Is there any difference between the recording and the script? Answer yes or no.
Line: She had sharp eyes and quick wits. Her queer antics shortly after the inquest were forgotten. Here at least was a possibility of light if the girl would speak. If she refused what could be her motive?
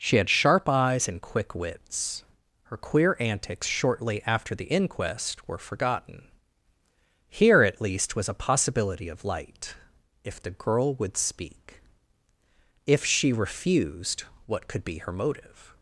no